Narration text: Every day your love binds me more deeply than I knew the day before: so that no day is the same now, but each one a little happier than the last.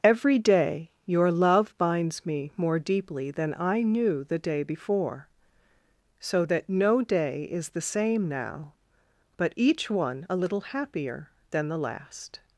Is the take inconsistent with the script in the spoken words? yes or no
no